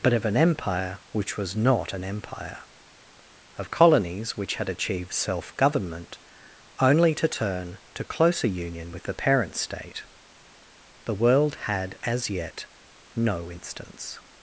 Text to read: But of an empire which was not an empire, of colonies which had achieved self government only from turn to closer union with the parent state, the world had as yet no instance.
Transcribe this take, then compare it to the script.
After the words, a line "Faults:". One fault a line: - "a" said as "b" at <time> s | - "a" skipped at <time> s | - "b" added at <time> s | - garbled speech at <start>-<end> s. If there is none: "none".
But of an empire which was not an empire, of colonies which had achieved self government only to turn to closer union with the parent state, the world had as yet no instance.
Faults:
- "from" said as "to" at 7.2 s